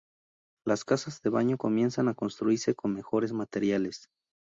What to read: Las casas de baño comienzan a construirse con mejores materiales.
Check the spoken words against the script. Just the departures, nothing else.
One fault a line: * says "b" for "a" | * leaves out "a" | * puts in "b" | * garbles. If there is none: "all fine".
all fine